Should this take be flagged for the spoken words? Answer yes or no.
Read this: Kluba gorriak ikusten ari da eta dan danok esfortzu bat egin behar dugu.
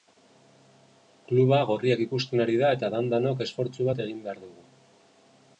no